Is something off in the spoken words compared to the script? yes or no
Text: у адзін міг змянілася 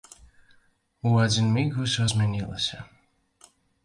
yes